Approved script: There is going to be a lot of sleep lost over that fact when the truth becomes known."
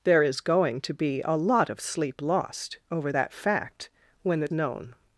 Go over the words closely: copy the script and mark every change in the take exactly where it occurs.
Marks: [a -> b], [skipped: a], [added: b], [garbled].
There is going to be a lot of sleep lost over that fact when the [skipped: truth becomes] known."